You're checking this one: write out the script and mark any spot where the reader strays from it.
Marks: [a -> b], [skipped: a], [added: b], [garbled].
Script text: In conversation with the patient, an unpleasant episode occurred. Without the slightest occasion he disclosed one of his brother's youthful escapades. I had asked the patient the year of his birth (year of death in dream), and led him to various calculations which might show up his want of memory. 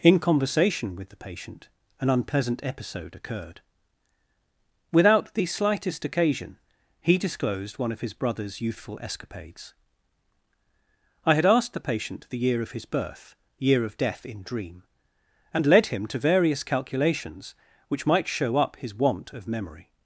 In conversation with the patient, an unpleasant episode occurred. Without the slightest occasion he disclosed one of his brother's youthful escapades. I had asked the patient the year of his birth (year of death in dream), and led him to various calculations which might show up his want of memory.